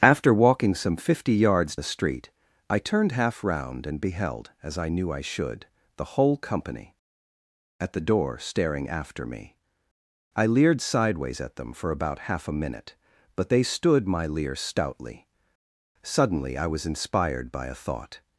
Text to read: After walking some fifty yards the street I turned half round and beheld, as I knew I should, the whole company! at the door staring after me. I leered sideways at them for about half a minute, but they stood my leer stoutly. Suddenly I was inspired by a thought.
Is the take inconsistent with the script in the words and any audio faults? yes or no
no